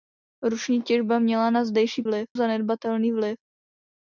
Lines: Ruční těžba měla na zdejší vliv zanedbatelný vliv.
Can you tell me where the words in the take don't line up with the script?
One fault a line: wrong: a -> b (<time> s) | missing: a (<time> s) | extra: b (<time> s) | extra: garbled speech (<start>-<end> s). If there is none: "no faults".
no faults